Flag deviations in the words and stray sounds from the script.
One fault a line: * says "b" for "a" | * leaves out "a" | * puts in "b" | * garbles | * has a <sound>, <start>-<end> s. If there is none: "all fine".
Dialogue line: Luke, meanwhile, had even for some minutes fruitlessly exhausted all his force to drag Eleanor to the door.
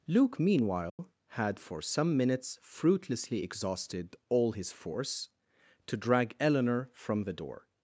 * has a dropout, 0.9-1.0 s
* leaves out "even"
* says "from" for "to"